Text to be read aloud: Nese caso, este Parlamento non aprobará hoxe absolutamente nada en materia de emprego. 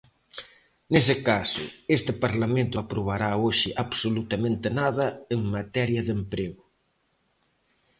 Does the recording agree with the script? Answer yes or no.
no